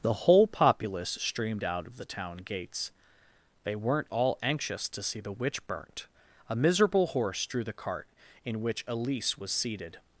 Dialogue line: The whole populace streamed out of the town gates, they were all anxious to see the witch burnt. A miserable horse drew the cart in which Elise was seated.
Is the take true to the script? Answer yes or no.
no